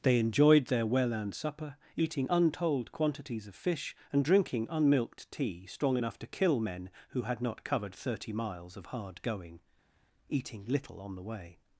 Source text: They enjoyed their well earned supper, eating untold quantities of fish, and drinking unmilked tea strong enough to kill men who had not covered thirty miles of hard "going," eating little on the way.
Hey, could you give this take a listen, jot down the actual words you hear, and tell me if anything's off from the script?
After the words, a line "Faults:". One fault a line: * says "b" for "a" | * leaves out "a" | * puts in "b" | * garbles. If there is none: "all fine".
They enjoyed their well earned supper, eating untold quantities of fish, and drinking unmilked tea strong enough to kill men who had not covered thirty miles of hard "going," eating little on the way.
Faults:
all fine